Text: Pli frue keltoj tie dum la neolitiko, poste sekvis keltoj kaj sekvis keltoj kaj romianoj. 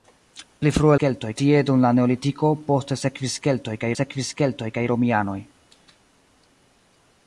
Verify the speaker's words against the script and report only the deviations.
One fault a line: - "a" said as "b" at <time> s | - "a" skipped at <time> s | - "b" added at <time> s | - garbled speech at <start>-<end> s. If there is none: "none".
none